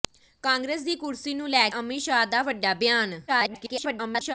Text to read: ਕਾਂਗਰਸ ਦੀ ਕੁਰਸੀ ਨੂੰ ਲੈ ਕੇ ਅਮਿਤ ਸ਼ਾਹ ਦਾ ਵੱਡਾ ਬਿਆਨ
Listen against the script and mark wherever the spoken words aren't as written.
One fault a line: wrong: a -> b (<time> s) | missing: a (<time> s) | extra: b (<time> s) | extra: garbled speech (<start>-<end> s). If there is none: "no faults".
missing: ਕੇ (1.7 s)
extra: garbled speech (3.3-4.3 s)